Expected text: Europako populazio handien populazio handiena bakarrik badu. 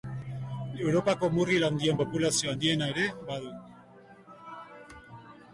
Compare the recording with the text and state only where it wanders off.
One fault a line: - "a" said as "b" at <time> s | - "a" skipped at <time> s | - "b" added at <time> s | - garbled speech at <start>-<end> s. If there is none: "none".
- "populazio" said as "murgil" at 1.4 s
- "bakarrik" said as "ere" at 3.0 s